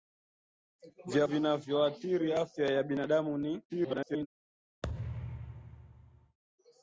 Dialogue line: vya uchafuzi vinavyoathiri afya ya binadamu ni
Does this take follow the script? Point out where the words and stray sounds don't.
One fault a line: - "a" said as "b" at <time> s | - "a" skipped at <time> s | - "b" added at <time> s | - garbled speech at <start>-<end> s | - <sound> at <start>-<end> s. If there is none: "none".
- "uchafuzi" skipped at 1.3 s
- garbled speech at 3.7-4.3 s
- thud at 4.8-6.4 s